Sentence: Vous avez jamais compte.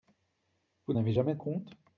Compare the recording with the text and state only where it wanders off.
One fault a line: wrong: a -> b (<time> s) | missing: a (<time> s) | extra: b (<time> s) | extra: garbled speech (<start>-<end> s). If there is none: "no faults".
no faults